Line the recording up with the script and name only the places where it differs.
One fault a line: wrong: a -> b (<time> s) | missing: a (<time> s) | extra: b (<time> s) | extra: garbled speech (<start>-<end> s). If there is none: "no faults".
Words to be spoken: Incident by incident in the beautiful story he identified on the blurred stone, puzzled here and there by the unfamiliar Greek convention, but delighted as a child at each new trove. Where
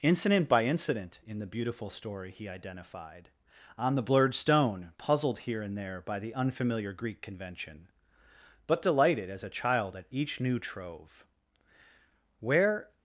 no faults